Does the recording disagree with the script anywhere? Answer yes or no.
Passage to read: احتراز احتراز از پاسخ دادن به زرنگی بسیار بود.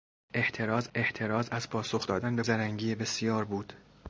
no